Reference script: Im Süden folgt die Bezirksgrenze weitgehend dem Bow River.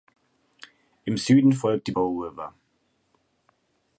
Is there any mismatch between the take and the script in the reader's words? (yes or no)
yes